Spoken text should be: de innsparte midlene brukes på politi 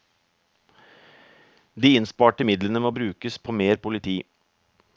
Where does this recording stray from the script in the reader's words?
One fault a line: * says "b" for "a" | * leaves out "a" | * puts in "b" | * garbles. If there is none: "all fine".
* puts in "må"
* puts in "mer"